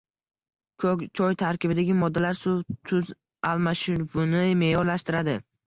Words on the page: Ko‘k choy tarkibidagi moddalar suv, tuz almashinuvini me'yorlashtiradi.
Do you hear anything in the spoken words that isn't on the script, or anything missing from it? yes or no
no